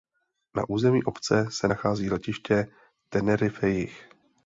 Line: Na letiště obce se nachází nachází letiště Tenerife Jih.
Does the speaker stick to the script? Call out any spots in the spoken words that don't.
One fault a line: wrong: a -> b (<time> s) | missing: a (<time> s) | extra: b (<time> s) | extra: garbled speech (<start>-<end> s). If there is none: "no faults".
wrong: letiště -> území (0.7 s)
missing: nachází (2.1 s)